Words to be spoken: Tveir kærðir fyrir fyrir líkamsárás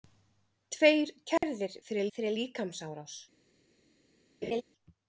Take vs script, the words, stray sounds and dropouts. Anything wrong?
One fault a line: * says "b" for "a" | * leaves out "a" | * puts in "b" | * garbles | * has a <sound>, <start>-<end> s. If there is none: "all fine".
* has a dropout, 1.4-1.4 s
* has a laugh, 4.4-4.6 s